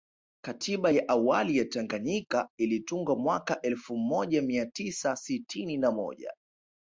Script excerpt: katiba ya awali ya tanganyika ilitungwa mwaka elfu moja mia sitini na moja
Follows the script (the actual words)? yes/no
no